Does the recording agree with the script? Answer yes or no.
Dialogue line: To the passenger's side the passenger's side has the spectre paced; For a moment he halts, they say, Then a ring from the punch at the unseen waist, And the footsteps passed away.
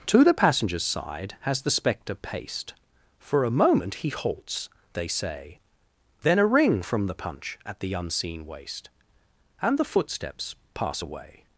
no